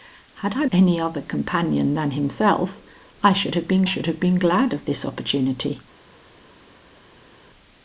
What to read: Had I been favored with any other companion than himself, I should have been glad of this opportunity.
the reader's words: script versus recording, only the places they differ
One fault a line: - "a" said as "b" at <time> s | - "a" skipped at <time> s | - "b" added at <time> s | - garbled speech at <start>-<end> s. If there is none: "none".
- "been favored with" skipped at 0.7 s
- "should have been" added at 3.8 s